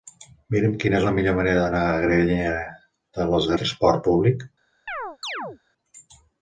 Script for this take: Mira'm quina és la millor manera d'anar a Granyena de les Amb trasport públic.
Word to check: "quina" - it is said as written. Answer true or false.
true